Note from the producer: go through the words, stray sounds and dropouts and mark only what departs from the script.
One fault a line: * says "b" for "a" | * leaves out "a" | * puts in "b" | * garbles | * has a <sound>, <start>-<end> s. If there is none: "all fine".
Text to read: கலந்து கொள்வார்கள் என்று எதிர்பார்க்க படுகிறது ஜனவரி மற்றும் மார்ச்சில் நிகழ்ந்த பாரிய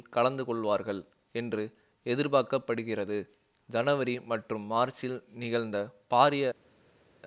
all fine